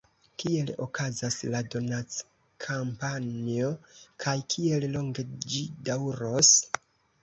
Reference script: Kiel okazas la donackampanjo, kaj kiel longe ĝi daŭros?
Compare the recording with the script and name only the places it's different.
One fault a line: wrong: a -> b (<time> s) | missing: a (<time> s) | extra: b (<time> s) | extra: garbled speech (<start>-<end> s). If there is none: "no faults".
no faults